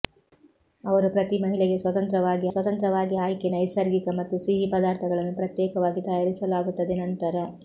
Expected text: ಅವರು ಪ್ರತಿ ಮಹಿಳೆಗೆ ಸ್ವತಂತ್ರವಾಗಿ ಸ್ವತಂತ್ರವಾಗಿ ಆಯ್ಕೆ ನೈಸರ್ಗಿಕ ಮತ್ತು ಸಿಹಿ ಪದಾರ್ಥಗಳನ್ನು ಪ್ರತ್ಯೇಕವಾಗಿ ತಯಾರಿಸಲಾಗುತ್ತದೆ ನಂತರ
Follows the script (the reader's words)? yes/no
yes